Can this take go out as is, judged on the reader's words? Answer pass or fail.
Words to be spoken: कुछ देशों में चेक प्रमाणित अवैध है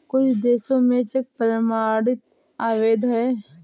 pass